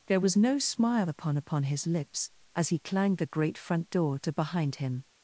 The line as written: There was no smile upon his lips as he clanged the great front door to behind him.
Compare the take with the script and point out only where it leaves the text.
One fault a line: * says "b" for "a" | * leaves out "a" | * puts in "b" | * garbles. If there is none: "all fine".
* puts in "upon"